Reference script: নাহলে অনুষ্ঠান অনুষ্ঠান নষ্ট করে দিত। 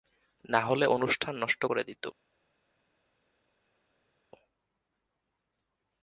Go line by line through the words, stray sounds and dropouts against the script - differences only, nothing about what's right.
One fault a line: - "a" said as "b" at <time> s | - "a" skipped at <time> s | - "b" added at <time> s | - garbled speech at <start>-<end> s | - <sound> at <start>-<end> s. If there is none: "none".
- "অনুষ্ঠান" skipped at 1.3 s